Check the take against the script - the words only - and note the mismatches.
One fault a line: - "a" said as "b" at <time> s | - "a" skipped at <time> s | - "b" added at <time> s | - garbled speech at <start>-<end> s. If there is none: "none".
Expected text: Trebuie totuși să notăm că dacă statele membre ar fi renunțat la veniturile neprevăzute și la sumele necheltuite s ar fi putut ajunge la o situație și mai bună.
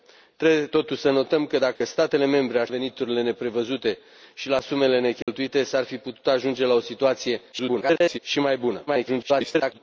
- "fi renunțat la" skipped at 2.7 s
- garbled speech at 7.5-8.2 s
- garbled speech at 8.9-9.8 s